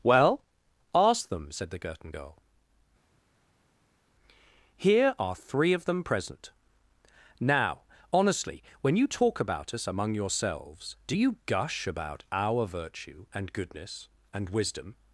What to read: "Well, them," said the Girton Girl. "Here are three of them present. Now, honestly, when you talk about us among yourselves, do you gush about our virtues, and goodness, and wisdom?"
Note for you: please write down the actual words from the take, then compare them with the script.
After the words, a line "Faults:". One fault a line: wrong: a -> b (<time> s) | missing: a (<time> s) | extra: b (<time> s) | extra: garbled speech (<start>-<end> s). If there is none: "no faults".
"Well, ask them," said the Girton Girl. "Here are three of them present. Now, honestly, when you talk about us among yourselves, do you gush about our virtue, and goodness, and wisdom?"
Faults:
extra: ask (0.9 s)
wrong: virtues -> virtue (12.7 s)